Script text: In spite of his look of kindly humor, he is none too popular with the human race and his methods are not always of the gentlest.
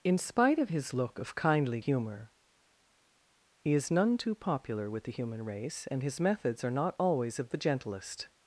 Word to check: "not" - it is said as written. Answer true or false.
true